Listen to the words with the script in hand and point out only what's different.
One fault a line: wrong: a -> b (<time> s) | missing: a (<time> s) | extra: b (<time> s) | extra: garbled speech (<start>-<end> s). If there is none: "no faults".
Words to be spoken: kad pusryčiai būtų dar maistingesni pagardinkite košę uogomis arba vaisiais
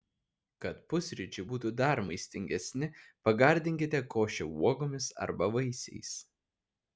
no faults